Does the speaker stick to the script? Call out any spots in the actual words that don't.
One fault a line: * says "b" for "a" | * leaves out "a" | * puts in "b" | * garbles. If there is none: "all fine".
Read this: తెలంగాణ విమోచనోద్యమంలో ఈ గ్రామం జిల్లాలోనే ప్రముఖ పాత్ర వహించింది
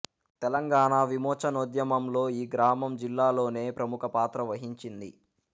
all fine